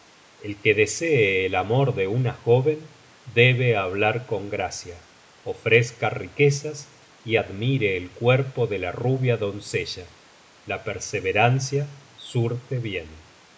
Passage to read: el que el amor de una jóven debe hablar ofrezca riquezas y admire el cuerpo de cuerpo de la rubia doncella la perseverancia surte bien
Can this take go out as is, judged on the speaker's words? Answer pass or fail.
fail